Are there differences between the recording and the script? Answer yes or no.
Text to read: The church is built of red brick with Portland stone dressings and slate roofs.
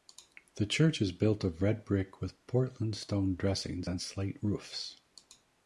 no